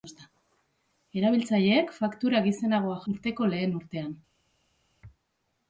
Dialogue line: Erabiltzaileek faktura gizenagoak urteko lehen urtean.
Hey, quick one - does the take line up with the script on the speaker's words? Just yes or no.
yes